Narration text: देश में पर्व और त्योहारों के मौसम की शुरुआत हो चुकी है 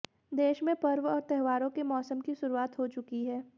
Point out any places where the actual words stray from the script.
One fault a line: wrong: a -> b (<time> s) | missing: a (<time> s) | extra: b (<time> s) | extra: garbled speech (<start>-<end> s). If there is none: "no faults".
no faults